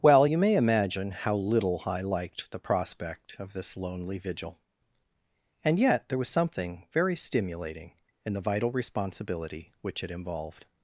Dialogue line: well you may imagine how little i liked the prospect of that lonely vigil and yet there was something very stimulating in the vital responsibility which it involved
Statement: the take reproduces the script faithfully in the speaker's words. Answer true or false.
false